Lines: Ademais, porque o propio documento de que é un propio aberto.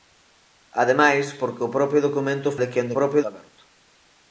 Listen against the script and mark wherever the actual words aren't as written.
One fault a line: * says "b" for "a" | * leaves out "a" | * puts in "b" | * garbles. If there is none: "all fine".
all fine